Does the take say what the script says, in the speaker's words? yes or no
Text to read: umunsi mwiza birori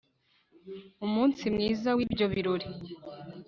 no